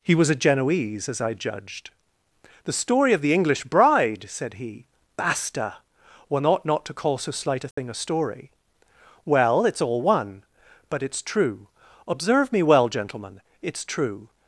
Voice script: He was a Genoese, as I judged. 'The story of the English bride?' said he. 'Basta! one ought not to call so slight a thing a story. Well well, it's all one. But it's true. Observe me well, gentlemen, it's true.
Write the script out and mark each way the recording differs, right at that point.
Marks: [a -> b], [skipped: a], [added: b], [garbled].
He was a Genoese, as I judged. 'The story of the English bride?' said he. 'Basta! one ought not to call so slight a thing a story. Well [skipped: well,] it's all one. But it's true. Observe me well, gentlemen, it's true.